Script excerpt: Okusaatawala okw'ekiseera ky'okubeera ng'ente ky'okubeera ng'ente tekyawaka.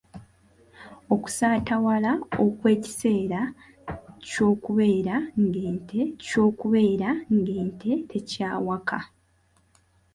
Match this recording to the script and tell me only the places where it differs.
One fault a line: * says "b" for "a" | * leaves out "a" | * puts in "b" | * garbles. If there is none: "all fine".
all fine